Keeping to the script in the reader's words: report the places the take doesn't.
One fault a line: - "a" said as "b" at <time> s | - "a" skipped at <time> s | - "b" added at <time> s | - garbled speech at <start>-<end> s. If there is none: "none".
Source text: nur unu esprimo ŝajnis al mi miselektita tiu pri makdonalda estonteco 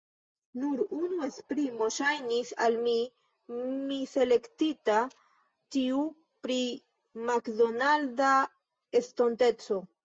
none